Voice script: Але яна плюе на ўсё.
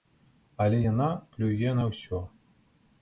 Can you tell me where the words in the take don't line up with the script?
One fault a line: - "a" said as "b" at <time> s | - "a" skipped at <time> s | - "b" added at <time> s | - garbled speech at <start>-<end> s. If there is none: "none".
none